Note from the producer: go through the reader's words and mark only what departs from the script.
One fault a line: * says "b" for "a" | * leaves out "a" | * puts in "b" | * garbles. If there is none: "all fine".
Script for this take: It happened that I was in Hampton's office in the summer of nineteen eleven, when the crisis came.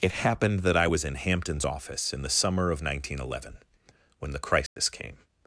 all fine